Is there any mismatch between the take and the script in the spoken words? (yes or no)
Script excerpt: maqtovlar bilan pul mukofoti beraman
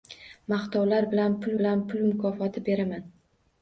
yes